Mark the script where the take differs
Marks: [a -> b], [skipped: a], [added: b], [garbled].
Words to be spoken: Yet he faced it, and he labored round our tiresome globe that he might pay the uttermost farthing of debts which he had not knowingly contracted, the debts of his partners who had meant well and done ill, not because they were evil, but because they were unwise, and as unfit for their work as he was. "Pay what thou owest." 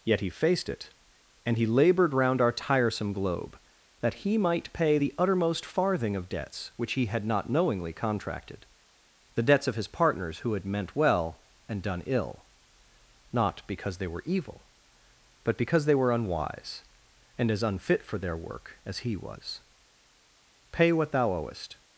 Yet he faced it, and he labored round our tiresome globe that he might pay the uttermost farthing of debts which he had not knowingly contracted, the debts of his partners who had meant well and done ill, not because they were evil, but because they were unwise, and as unfit for their work as he was. "Pay what thou owest."